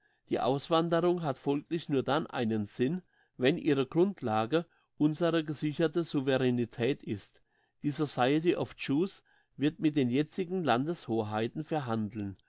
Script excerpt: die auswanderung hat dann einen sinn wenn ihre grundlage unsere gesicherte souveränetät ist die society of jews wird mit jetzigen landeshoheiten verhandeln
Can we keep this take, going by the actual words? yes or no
no